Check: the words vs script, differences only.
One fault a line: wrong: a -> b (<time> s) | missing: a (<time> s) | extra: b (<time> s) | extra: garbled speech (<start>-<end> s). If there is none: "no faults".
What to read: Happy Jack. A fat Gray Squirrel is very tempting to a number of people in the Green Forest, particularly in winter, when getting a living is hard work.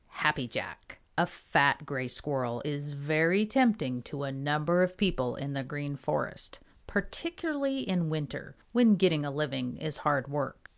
no faults